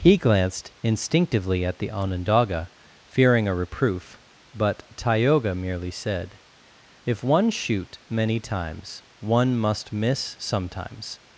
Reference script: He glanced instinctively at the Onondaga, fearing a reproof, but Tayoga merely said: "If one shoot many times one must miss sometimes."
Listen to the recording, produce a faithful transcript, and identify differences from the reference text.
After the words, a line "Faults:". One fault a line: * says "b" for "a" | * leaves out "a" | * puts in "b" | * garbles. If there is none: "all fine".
He glanced instinctively at the Onondaga, fearing a reproof, but Tayoga merely said: "If one shoot many times one must miss sometimes."
Faults:
all fine